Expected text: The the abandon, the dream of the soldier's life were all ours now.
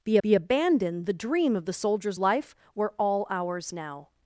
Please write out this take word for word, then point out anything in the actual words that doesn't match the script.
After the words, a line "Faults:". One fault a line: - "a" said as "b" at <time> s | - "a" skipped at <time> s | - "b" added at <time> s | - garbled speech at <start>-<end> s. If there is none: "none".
The the abandon, the dream of the soldier's life were all ours now.
Faults:
none